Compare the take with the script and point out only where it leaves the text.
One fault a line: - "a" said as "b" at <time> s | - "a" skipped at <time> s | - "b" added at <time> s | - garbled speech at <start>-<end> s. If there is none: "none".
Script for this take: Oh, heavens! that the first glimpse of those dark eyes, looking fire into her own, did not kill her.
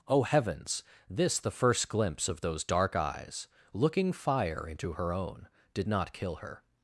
- "that" said as "this" at 1.1 s